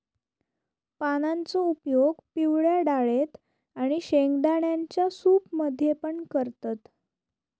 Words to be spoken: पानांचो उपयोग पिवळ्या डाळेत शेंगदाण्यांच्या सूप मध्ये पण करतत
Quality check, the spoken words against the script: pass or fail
fail